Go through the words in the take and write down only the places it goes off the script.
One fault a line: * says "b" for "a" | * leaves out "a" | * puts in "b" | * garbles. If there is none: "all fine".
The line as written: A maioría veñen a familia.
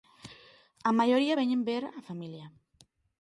* puts in "ver"